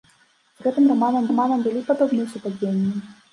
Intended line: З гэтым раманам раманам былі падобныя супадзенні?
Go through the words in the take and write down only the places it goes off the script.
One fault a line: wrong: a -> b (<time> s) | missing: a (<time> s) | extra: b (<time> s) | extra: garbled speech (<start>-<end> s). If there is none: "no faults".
no faults